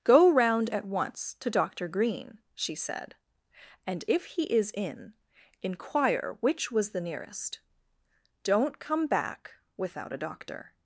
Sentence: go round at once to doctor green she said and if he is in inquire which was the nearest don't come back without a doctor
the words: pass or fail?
pass